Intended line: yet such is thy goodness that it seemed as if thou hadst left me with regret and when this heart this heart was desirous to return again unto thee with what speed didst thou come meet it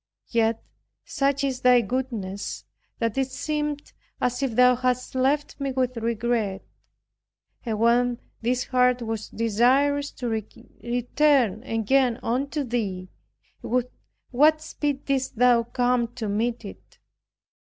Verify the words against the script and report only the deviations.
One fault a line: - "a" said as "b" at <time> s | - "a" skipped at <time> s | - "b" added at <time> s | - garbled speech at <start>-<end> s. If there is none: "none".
- "this heart" skipped at 9.0 s
- "to" added at 16.2 s